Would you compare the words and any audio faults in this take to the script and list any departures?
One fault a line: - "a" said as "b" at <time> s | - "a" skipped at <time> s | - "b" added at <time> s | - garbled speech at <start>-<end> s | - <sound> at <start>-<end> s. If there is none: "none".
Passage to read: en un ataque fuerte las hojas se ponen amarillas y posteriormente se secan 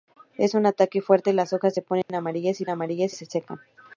- dropout at 2.0-2.1 s
- "posteriormente" said as "amarillas" at 2.7 s